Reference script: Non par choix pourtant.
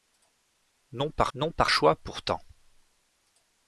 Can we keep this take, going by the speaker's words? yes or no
no